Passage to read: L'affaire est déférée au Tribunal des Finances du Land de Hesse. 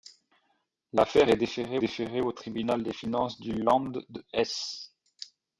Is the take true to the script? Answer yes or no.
no